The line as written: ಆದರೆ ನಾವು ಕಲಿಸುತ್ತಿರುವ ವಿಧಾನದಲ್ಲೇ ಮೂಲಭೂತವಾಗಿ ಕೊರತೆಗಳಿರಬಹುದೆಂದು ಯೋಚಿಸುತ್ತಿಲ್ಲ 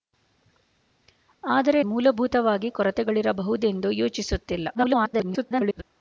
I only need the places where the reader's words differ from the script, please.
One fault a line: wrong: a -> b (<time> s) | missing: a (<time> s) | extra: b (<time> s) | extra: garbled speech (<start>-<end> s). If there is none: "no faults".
missing: ನಾವು ಕಲಿಸುತ್ತಿರುವ ವಿಧಾನದಲ್ಲೇ (1.8 s)
extra: garbled speech (4.7-5.8 s)